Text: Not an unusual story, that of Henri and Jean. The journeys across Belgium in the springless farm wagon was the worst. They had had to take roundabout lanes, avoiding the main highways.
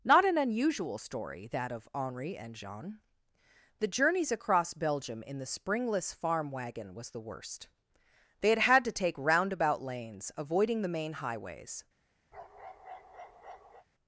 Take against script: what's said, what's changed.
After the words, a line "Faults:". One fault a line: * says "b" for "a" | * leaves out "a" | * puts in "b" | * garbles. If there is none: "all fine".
Not an unusual story, that of Henri and Jean. The journeys across Belgium in the springless farm wagon was the worst. They had had to take roundabout lanes, avoiding the main highways.
Faults:
all fine